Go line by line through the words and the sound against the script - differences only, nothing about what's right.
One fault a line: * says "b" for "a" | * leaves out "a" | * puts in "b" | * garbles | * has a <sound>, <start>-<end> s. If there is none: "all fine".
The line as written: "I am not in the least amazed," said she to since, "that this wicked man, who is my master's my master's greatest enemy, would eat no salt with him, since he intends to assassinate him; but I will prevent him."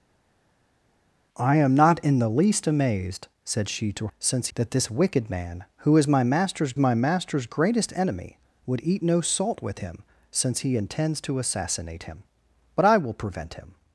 all fine